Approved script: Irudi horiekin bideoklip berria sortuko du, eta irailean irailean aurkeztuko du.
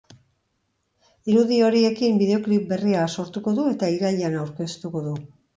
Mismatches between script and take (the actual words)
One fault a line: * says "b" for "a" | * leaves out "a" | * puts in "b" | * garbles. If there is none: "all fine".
* leaves out "irailean"